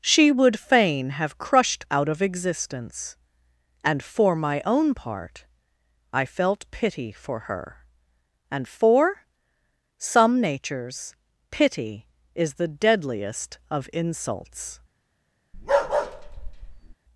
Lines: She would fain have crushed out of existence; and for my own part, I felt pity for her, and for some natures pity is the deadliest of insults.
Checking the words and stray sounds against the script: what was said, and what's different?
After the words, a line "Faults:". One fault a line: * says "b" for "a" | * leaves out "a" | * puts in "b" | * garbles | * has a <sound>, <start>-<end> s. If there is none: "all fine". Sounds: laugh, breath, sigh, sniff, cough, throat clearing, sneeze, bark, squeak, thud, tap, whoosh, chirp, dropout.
She would fain have crushed out of existence; and for my own part, I felt pity for her, and for some natures pity is the deadliest of insults.
Faults:
* has a bark, 15.5-16.9 s